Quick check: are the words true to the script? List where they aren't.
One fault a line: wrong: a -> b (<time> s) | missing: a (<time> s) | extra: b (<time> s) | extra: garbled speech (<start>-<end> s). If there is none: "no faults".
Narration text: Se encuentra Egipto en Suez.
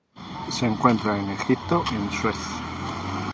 extra: en (1.1 s)